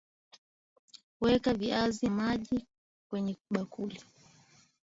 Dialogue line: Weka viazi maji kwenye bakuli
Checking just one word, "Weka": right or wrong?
right